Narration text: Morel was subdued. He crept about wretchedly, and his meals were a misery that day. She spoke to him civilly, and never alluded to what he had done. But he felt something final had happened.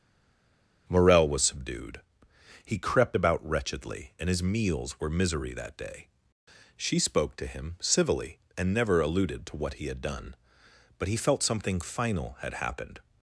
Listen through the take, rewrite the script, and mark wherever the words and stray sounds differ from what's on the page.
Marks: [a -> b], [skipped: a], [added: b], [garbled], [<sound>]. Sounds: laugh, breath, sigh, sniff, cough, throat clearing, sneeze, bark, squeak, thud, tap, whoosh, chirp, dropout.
Morel was subdued. He crept about wretchedly, and his meals were [skipped: a] misery that day. She spoke to him civilly, and never alluded to what he had done. But he felt something final had happened.